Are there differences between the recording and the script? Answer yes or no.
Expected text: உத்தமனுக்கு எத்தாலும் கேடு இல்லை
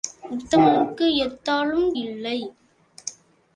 yes